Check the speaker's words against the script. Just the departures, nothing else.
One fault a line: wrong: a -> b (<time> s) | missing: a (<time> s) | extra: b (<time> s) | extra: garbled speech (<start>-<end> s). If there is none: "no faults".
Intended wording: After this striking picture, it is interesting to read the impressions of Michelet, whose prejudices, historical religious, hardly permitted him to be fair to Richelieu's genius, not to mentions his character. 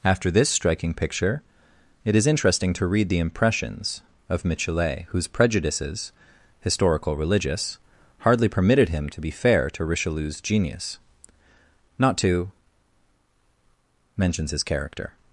no faults